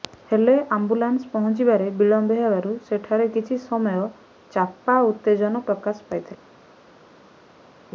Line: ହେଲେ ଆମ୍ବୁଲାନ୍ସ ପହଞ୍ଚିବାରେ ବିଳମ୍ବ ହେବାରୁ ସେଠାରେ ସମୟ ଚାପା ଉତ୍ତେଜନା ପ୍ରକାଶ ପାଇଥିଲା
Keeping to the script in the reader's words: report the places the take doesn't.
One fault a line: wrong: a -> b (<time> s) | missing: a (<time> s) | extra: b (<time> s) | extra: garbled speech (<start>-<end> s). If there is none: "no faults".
extra: କିଛି (3.3 s)